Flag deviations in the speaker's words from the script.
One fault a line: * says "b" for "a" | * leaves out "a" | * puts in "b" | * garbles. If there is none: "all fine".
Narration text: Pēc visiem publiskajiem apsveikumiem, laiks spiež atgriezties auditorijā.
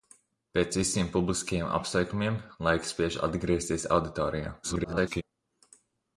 * garbles